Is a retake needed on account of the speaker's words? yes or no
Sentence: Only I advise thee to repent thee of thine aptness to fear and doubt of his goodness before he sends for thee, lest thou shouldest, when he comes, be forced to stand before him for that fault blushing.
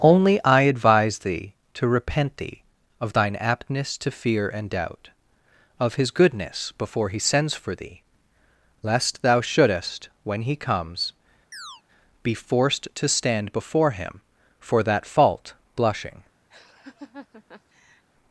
no